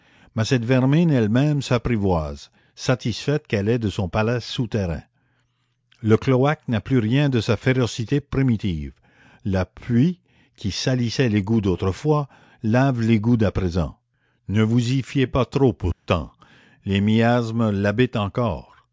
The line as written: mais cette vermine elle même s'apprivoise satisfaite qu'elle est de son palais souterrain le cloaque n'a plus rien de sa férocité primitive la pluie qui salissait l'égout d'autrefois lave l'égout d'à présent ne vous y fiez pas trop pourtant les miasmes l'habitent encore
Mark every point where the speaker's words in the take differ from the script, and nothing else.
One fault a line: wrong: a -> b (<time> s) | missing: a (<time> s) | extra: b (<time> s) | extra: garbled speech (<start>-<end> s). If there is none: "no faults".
no faults